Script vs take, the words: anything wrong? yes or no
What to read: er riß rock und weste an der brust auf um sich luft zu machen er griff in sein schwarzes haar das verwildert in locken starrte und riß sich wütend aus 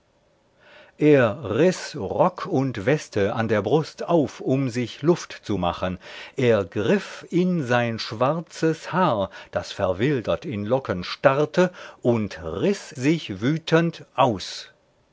no